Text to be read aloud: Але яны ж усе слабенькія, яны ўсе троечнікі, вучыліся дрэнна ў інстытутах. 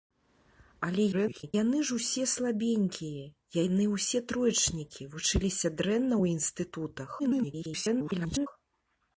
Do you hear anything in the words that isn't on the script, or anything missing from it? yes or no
yes